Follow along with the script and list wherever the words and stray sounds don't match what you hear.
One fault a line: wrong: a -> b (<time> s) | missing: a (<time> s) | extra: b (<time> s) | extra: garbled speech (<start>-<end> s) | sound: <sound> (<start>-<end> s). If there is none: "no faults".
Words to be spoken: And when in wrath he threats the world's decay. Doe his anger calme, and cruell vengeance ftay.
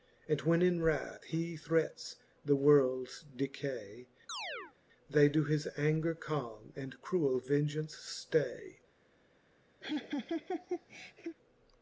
sound: chirp (4.3-4.7 s)
extra: They (5.1 s)
sound: laugh (9.8-11.4 s)